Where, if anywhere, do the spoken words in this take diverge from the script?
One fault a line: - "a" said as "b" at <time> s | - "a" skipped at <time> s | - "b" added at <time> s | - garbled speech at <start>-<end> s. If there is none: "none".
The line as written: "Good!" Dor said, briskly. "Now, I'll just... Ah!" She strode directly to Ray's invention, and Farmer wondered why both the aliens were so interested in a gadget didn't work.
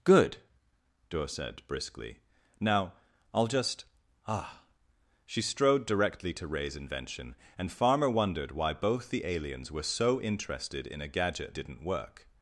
none